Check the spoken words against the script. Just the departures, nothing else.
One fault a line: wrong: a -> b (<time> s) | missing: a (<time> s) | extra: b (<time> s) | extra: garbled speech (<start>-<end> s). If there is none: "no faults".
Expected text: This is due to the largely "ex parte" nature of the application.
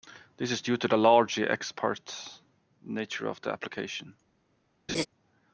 no faults